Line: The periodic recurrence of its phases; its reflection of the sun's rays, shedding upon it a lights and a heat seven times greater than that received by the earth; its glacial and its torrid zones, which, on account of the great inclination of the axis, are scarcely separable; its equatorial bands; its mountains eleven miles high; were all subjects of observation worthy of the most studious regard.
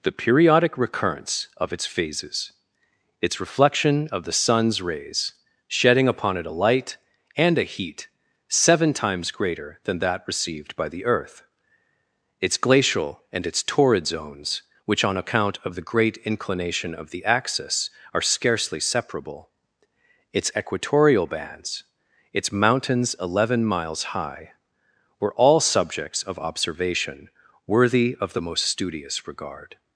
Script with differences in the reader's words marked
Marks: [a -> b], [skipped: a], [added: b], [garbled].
The periodic recurrence of its phases; its reflection of the sun's rays, shedding upon it a [lights -> light] and a heat seven times greater than that received by the earth; its glacial and its torrid zones, which, on account of the great inclination of the axis, are scarcely separable; its equatorial bands; its mountains eleven miles high; were all subjects of observation worthy of the most studious regard.